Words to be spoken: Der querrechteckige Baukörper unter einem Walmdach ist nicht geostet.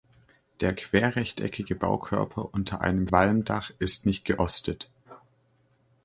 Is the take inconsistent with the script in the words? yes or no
no